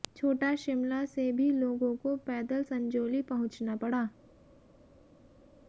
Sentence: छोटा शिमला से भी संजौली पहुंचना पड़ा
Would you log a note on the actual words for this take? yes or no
yes